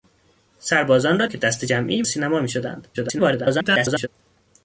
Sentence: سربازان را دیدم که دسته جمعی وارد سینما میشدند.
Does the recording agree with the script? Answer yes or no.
no